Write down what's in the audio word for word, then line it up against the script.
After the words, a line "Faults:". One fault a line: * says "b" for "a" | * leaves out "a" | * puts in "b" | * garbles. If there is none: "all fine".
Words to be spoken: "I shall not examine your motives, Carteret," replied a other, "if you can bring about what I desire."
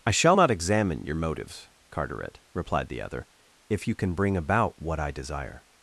"I shall not examine your motives, Carteret," replied the other, "if you can bring about what I desire."
Faults:
* says "the" for "a"